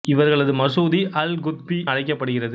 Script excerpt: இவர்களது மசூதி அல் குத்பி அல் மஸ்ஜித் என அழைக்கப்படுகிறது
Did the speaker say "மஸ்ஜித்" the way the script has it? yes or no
no